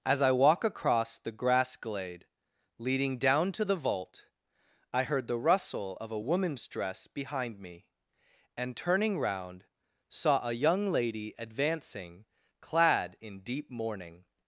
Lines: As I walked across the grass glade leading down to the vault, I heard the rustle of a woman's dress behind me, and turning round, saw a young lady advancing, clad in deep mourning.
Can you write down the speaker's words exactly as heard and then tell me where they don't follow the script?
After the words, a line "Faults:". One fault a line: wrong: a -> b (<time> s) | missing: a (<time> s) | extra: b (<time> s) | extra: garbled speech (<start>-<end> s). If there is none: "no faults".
As I walk across the grass glade leading down to the vault, I heard the rustle of a woman's dress behind me, and turning round, saw a young lady advancing, clad in deep mourning.
Faults:
wrong: walked -> walk (0.3 s)